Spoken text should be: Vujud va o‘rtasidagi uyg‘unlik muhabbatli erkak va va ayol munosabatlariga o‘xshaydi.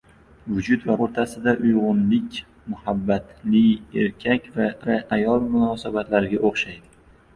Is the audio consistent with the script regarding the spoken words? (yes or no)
yes